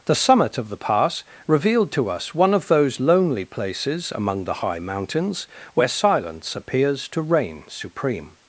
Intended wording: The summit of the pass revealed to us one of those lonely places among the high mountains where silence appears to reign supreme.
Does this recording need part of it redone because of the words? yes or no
no